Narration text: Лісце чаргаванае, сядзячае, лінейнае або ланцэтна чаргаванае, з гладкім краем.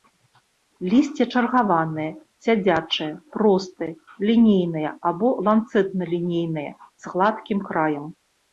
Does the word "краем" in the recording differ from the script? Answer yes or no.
no